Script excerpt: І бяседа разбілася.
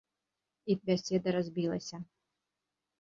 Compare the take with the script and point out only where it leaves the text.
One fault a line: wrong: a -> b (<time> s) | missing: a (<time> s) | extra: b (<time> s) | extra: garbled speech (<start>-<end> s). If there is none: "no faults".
no faults